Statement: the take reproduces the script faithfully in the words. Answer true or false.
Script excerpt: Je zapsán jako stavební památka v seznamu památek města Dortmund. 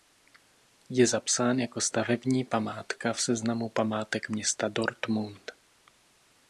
true